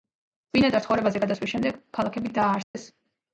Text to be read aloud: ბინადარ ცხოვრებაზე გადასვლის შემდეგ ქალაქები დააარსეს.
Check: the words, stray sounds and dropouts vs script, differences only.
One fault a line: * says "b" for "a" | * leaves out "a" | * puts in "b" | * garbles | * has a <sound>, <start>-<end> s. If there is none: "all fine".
* has a dropout, 2.6-2.7 s